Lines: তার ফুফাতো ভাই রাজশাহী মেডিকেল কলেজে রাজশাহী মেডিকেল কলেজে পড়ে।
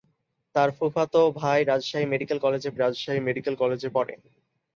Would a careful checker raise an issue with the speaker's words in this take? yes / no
no